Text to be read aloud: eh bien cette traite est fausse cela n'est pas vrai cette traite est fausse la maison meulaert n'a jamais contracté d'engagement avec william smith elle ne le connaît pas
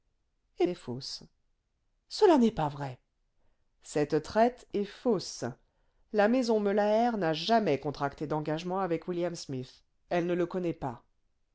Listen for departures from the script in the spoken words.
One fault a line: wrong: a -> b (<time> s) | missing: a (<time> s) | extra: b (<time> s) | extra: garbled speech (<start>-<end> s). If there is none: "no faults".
missing: bien cette traite (0.7 s)